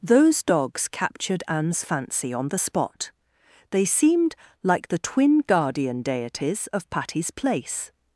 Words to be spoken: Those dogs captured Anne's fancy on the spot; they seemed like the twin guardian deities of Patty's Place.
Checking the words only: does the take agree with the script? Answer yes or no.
yes